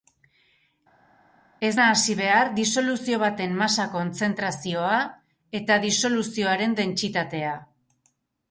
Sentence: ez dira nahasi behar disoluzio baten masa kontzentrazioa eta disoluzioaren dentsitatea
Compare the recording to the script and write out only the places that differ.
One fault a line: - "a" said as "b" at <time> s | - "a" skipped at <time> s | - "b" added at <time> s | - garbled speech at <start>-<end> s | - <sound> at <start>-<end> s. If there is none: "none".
- "dira" skipped at 1.7 s